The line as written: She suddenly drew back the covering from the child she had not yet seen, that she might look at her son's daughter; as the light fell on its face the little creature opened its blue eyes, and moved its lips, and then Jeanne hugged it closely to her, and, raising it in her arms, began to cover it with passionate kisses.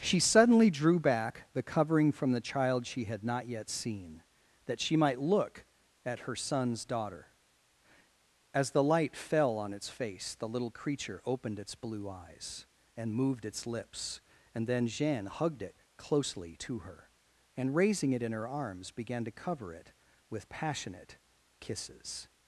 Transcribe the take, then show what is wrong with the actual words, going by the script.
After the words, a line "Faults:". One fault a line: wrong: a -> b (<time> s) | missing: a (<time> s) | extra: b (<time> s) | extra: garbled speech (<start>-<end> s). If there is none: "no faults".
She suddenly drew back the covering from the child she had not yet seen, that she might look at her son's daughter; as the light fell on its face the little creature opened its blue eyes, and moved its lips, and then Jeanne hugged it closely to her, and, raising it in her arms, began to cover it with passionate kisses.
Faults:
no faults